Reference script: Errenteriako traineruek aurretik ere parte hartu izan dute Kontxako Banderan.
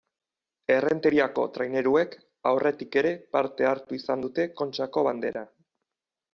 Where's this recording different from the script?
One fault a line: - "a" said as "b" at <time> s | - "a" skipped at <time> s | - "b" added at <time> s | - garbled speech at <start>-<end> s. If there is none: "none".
none